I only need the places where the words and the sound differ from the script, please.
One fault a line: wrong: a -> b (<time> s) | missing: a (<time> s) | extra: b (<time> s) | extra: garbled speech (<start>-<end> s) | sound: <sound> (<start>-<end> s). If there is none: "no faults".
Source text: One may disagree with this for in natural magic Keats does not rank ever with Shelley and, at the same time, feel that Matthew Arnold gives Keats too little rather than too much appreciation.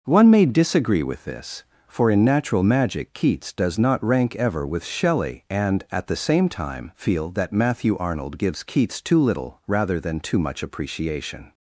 no faults